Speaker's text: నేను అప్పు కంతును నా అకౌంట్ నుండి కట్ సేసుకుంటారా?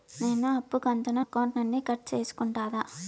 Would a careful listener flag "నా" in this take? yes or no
yes